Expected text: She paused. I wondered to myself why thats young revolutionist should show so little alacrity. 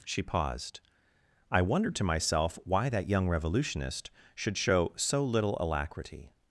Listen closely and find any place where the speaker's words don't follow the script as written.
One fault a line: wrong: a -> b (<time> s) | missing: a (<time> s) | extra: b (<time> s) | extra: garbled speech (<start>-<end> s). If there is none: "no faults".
wrong: thats -> that (2.9 s)